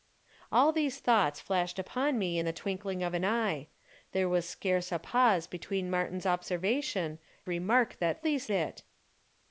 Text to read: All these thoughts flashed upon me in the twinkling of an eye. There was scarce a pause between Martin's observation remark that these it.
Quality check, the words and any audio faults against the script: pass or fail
pass